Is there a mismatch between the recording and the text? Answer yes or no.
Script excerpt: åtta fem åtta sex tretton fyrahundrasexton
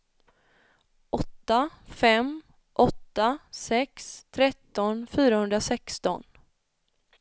no